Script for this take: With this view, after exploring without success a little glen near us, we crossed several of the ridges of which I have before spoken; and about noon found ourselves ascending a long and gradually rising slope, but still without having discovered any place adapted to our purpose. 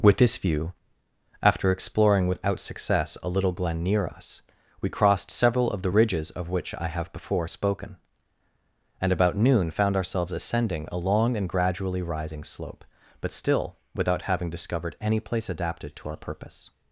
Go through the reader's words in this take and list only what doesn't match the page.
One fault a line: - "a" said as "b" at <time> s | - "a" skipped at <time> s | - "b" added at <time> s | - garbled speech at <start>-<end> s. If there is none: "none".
none